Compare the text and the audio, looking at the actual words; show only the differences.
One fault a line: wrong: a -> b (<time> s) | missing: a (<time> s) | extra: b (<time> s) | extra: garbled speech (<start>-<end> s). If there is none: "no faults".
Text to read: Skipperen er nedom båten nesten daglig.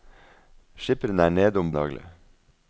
missing: båten nesten (1.7 s)